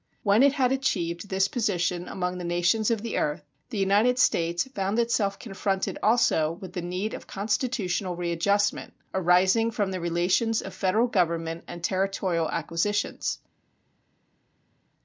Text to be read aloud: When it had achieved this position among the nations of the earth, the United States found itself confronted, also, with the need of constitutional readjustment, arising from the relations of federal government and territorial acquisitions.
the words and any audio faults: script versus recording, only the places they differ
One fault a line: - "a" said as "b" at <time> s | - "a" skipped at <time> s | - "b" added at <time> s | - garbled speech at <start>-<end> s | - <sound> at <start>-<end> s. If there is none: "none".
none